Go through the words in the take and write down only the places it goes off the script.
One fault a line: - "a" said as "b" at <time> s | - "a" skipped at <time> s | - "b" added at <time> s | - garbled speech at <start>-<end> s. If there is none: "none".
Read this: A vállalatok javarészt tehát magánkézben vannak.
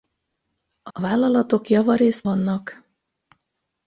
- "a" added at 0.9 s
- "tehát magánkézben" skipped at 2.2 s